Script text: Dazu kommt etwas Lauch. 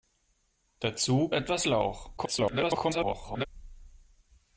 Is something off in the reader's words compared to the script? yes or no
yes